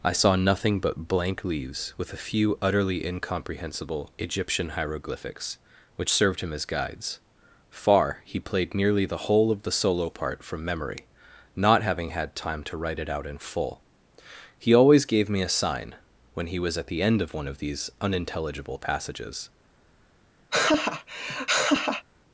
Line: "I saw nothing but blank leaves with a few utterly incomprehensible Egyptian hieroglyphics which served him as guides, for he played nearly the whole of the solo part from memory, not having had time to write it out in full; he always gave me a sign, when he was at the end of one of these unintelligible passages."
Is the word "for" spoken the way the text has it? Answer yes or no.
no